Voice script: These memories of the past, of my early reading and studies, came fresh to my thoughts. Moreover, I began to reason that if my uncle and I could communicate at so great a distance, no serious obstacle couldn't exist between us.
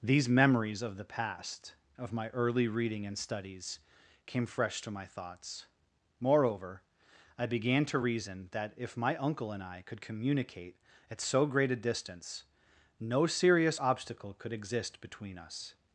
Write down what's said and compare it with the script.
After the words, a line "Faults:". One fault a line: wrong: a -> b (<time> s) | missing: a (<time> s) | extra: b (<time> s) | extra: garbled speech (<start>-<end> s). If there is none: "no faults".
These memories of the past, of my early reading and studies, came fresh to my thoughts. Moreover, I began to reason that if my uncle and I could communicate at so great a distance, no serious obstacle could exist between us.
Faults:
wrong: couldn't -> could (14.4 s)